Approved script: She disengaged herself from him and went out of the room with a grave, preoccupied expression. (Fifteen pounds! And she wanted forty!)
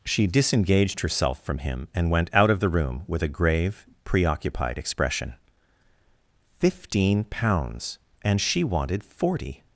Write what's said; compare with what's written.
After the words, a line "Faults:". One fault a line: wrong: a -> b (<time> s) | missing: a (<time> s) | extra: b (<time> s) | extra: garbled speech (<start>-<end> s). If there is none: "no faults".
She disengaged herself from him and went out of the room with a grave, preoccupied expression. (Fifteen pounds! And she wanted forty!)
Faults:
no faults